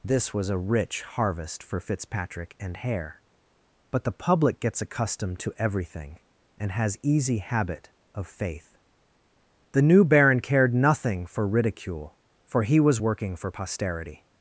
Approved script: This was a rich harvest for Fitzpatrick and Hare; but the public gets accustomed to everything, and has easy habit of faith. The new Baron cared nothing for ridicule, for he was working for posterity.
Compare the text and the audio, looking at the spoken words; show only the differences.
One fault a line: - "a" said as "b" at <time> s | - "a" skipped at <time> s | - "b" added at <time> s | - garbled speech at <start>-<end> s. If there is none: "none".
none